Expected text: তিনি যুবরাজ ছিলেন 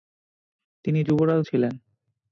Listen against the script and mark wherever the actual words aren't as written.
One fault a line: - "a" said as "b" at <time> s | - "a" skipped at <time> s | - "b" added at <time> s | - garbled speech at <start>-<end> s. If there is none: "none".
none